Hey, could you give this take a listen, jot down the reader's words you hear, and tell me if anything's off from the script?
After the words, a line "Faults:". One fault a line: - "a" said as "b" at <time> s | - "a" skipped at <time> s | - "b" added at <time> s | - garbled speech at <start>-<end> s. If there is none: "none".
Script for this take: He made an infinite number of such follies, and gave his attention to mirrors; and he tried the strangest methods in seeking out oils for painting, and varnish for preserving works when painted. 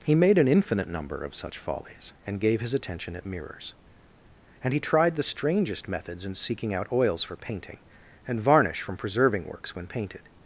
He made an infinite number of such follies, and gave his attention at mirrors; and he tried the strangest methods in seeking out oils for painting, and varnish from preserving works when painted.
Faults:
- "to" said as "at" at 3.1 s
- "for" said as "from" at 8.8 s